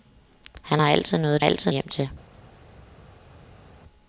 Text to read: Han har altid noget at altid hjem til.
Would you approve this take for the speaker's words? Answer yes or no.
yes